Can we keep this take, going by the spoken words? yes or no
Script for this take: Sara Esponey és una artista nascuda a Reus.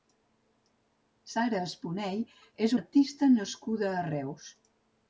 no